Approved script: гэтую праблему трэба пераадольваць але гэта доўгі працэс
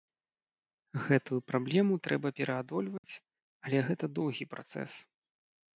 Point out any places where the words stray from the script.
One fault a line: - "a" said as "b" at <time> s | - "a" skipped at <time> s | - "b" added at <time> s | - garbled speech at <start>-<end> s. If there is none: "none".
none